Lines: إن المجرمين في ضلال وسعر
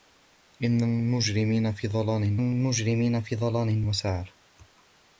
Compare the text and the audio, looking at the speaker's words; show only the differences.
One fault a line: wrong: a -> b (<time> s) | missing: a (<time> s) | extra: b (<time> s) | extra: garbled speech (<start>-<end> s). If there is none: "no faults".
extra: المجرمين في ضلال (2.3 s)